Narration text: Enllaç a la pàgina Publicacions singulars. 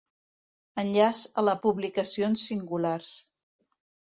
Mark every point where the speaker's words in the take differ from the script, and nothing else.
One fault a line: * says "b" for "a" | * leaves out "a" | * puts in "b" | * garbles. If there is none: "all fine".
* leaves out "pàgina"